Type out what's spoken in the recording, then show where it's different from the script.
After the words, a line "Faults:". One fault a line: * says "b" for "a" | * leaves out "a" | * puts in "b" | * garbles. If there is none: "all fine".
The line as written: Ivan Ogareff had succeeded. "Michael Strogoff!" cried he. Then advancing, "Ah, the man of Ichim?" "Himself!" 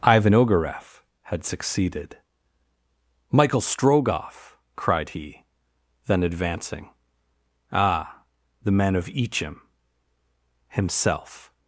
Ivan Ogareff had succeeded. "Michael Strogoff!" cried he. Then advancing, "Ah, the man of Ichim?" "Himself!"
Faults:
all fine